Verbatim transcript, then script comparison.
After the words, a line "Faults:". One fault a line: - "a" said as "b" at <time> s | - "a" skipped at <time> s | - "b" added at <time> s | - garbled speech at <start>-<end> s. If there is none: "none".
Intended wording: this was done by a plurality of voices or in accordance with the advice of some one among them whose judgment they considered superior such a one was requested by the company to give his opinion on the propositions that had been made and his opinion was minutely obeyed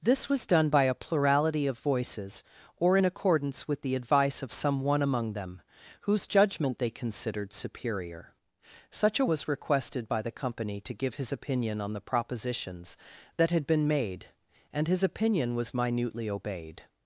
this was done by a plurality of voices or in accordance with the advice of some one among them whose judgment they considered superior such a was requested by the company to give his opinion on the propositions that had been made and his opinion was minutely obeyed
Faults:
- "one" skipped at 9.2 s